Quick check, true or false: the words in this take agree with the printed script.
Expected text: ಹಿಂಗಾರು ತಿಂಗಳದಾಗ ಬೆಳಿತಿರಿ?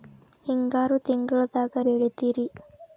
true